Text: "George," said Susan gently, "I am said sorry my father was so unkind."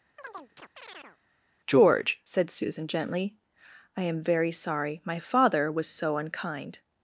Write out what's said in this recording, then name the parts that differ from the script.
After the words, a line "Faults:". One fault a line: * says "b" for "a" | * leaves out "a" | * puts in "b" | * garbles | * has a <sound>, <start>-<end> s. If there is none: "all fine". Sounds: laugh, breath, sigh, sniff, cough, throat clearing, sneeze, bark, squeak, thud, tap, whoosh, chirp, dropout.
"George," said Susan gently, "I am very sorry my father was so unkind."
Faults:
* has a chirp, 0.2-1.2 s
* says "very" for "said"